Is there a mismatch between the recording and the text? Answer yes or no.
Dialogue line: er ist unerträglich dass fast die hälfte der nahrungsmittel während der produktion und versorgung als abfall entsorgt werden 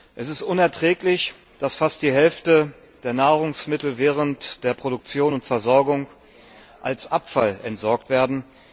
yes